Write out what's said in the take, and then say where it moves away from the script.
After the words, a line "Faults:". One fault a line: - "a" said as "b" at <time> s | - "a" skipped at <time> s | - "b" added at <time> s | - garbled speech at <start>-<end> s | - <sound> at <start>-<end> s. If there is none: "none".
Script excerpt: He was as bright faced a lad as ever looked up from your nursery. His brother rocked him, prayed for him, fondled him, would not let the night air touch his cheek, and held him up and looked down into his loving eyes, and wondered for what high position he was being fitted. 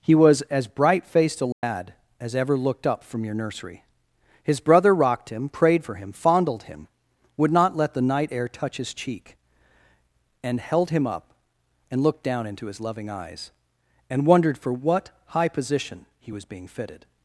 He was as bright faced a lad as ever looked up from your nursery. His brother rocked him, prayed for him, fondled him, would not let the night air touch his cheek, and held him up and looked down into his loving eyes, and wondered for what high position he was being fitted.
Faults:
- dropout at 1.5-1.6 s